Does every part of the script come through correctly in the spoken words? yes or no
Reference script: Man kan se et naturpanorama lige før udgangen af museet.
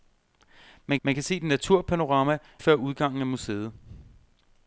no